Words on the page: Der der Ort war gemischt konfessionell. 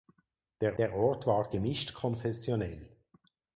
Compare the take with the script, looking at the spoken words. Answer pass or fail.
pass